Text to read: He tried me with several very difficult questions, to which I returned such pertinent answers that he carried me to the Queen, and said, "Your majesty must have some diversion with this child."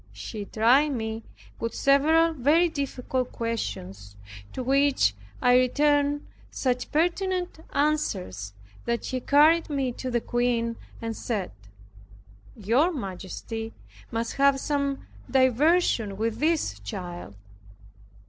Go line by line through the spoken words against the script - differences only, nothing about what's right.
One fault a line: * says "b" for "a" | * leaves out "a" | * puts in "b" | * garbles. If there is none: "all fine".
all fine